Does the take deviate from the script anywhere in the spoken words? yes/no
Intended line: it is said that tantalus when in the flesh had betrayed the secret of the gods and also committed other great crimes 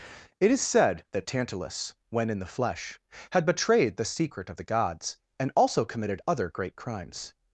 no